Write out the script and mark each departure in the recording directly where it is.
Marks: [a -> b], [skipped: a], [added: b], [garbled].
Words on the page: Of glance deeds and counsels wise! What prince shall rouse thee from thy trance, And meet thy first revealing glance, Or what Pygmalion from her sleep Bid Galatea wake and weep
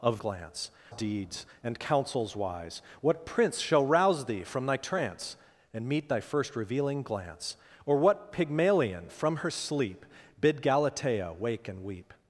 Of glance deeds and counsels wise! What prince shall rouse thee from thy trance, And meet thy first revealing glance, Or what Pygmalion from her sleep Bid Galatea wake and weep